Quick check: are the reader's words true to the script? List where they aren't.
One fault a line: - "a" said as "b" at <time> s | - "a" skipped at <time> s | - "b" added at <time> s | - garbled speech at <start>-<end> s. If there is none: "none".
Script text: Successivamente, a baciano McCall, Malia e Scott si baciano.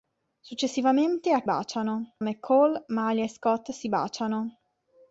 none